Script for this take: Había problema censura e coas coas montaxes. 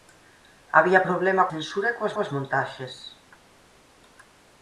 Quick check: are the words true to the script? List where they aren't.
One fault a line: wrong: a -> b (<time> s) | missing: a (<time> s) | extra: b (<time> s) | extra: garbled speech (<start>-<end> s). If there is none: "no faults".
no faults